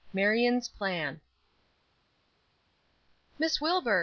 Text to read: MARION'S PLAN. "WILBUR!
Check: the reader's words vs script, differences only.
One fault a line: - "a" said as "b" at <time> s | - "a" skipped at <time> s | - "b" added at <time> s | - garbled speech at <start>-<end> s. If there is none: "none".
- "MISS" added at 3.4 s